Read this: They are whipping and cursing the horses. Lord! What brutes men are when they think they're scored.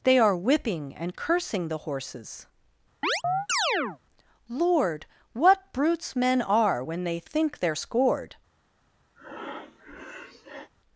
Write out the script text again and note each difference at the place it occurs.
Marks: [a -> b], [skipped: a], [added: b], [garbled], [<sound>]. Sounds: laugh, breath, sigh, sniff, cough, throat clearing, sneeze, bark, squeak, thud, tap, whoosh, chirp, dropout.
They are whipping and cursing the horses. [chirp] Lord! What brutes men are when they think they're scored. [breath]